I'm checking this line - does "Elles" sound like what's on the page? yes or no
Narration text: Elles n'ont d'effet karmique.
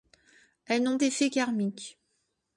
yes